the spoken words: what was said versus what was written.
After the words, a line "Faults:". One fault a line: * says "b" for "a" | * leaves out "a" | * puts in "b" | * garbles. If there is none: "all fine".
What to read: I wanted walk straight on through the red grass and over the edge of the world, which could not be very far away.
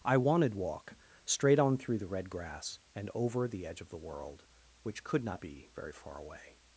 I wanted walk straight on through the red grass and over the edge of the world, which could not be very far away.
Faults:
all fine